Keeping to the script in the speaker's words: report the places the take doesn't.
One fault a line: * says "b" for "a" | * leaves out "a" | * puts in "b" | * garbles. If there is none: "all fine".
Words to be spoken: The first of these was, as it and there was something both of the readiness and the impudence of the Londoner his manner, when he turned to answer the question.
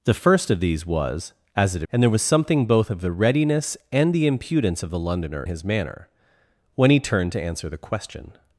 all fine